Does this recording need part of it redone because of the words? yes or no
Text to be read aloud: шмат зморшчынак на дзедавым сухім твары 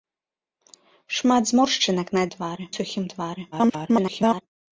yes